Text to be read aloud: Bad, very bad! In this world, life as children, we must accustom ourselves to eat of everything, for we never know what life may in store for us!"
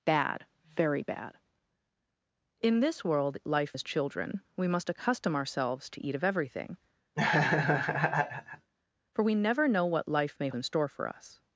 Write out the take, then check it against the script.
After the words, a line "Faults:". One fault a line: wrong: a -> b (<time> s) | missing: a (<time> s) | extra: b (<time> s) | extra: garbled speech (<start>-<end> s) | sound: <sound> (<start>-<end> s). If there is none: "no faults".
Bad, very bad! In this world, life as children, we must accustom ourselves to eat of everything, for we never know what life may in store for us!"
Faults:
sound: laugh (7.2-8.7 s)